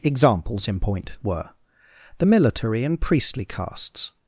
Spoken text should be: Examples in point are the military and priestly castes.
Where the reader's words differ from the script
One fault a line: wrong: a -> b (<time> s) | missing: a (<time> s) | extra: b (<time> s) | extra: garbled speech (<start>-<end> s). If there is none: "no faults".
wrong: are -> were (1.2 s)